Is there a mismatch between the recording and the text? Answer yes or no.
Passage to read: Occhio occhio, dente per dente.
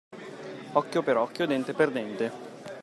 yes